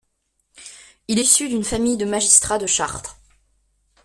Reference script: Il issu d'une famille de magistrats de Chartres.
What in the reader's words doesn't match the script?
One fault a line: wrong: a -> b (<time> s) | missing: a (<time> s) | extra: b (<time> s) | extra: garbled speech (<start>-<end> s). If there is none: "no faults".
no faults